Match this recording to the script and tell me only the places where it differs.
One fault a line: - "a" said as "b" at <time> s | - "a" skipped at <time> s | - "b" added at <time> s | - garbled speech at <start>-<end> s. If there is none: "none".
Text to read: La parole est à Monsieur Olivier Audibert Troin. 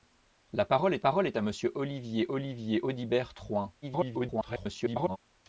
- "parole est" added at 1.0 s
- "Olivier" added at 2.3 s
- garbled speech at 3.8-5.2 s